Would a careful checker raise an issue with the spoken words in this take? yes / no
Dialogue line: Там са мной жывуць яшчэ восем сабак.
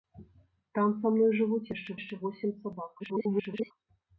yes